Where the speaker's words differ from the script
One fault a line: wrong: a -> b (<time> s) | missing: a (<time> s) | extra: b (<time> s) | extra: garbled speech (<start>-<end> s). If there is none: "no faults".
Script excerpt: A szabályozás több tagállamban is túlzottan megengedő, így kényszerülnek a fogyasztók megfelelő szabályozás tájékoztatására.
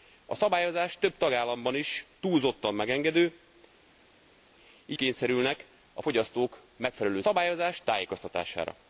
no faults